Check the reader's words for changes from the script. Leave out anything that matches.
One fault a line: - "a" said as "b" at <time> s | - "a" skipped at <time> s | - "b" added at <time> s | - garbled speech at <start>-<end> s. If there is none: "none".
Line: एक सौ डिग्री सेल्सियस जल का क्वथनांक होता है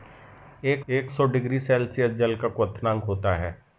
- "एक" added at 0.9 s